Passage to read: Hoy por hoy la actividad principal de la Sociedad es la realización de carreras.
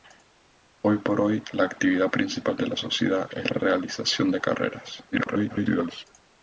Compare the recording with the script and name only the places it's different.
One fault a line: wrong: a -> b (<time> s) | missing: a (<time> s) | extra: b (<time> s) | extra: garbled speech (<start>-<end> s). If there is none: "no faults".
missing: la (3.5 s)
extra: garbled speech (5.1-6.1 s)